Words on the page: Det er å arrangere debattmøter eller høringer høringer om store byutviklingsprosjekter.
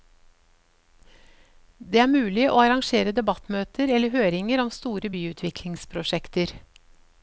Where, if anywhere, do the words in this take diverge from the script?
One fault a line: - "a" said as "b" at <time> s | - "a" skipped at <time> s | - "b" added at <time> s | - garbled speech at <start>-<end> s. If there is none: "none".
- "mulig" added at 2.1 s
- "høringer" skipped at 4.6 s